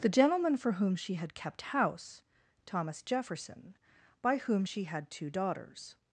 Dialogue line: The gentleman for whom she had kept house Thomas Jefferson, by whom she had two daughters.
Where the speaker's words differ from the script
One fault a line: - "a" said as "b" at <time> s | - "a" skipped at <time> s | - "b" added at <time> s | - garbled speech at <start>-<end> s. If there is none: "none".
none